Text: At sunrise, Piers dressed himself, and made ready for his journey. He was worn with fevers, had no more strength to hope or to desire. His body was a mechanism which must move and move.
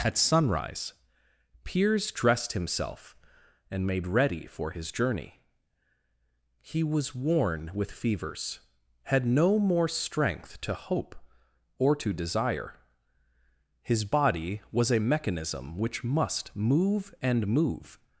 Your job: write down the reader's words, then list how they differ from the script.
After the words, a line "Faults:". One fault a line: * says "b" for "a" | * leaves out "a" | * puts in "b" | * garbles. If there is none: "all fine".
At sunrise, Piers dressed himself, and made ready for his journey. He was worn with fevers, had no more strength to hope or to desire. His body was a mechanism which must move and move.
Faults:
all fine